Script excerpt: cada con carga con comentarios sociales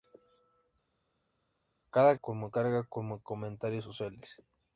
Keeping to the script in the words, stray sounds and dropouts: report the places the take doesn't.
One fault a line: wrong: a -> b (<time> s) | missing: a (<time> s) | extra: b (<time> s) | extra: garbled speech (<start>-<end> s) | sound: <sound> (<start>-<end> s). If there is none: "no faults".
no faults